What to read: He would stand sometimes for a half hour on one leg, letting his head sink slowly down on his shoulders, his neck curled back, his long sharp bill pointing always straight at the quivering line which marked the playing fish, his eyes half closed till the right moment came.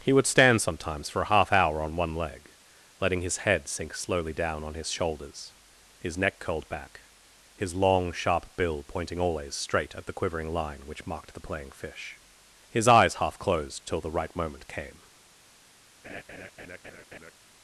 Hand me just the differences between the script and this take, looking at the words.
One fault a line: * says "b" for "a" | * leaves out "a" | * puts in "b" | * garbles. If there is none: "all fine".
all fine